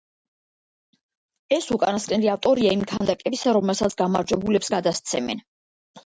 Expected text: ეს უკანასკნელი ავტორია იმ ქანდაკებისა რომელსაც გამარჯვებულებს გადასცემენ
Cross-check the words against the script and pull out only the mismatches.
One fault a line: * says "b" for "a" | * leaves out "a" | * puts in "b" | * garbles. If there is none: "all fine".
all fine